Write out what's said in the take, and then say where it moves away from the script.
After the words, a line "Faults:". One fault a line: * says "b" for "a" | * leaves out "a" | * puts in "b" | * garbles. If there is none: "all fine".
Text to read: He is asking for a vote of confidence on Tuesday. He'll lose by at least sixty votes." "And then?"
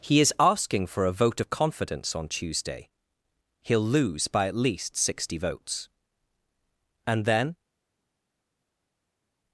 He is asking for a vote of confidence on Tuesday. He'll lose by at least sixty votes." "And then?"
Faults:
all fine